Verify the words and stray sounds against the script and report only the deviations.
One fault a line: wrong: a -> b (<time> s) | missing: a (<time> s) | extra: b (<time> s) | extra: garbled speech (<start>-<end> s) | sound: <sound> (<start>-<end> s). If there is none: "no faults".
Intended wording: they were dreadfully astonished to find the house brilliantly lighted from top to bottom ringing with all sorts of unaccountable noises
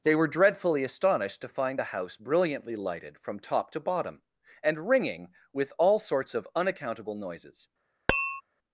extra: and (4.6 s)
sound: tap (8.1-8.4 s)